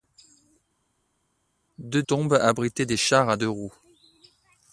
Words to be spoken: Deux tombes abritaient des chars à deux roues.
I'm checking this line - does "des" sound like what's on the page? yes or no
yes